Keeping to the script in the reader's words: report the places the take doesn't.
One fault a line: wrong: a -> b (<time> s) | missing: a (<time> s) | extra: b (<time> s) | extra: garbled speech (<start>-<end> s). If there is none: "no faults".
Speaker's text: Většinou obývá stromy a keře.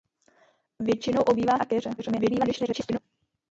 missing: stromy (1.6 s)
extra: garbled speech (2.0-3.0 s)